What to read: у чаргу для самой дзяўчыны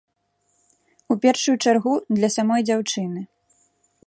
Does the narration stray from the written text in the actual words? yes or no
yes